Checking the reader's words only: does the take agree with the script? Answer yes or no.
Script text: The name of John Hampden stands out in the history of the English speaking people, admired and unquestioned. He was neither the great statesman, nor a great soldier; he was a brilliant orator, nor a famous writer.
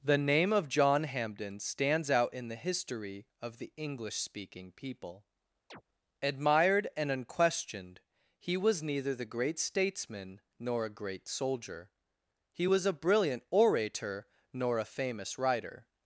yes